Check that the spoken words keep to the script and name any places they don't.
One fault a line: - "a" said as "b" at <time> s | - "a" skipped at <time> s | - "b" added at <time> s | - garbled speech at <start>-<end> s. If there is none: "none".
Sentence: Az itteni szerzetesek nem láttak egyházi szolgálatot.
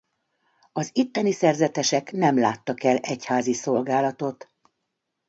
- "el" added at 2.8 s